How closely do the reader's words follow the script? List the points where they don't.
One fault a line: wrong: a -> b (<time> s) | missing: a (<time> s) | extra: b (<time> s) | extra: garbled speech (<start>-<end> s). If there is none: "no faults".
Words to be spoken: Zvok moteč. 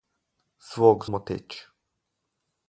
no faults